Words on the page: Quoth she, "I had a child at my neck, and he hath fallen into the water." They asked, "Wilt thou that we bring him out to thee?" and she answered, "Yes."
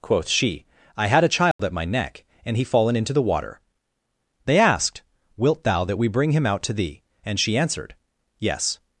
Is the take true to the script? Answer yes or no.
no